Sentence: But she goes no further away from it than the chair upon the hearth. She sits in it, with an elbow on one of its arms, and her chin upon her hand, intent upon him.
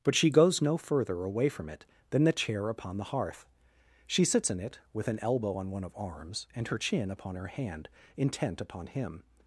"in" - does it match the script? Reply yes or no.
yes